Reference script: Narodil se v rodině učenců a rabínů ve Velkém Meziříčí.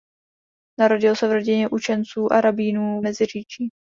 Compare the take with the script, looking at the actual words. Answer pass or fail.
fail